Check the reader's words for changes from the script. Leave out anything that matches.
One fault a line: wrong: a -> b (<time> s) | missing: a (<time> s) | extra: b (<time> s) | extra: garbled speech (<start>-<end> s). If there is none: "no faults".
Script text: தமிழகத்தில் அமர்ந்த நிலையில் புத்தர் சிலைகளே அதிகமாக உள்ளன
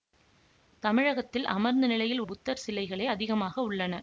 no faults